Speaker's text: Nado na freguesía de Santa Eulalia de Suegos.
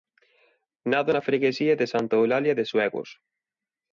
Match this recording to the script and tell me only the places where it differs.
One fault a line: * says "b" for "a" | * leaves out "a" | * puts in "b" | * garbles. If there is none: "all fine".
all fine